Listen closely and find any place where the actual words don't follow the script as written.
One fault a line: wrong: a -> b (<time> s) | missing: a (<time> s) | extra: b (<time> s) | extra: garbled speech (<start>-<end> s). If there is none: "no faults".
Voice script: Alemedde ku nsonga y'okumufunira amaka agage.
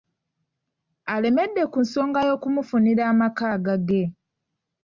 no faults